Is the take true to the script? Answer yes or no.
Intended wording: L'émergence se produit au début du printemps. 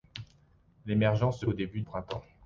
no